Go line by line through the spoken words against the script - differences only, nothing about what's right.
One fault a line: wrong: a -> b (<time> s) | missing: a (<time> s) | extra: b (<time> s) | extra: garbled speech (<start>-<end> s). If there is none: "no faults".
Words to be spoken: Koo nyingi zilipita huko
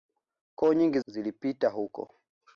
no faults